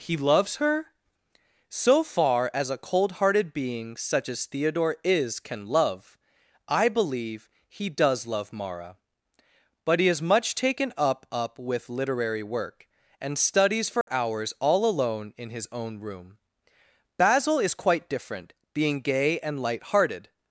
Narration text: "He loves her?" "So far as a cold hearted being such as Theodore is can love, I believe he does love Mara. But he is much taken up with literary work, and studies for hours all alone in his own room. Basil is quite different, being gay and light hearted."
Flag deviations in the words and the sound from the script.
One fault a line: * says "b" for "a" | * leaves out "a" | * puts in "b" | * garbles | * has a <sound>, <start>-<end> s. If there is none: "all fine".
* puts in "up"
* has a dropout, 14.0-14.1 s